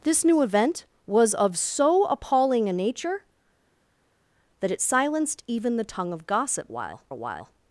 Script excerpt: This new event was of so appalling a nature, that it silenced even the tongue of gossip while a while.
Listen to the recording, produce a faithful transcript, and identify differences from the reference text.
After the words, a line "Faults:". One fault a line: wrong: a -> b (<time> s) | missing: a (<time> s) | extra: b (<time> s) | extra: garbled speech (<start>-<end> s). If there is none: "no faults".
This new event was of so appalling a nature, that it silenced even the tongue of gossip while a while.
Faults:
no faults